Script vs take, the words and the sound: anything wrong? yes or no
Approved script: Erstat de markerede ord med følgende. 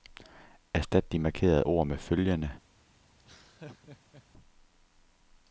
yes